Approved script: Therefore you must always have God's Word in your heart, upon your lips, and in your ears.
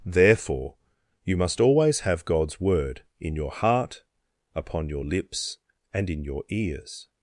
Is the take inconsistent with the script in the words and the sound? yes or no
no